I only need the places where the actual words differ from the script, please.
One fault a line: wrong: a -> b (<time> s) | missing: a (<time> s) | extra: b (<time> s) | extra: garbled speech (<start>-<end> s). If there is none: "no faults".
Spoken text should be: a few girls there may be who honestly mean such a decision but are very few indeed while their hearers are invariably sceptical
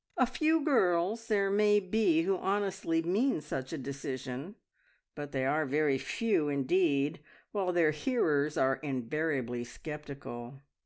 extra: they (5.3 s)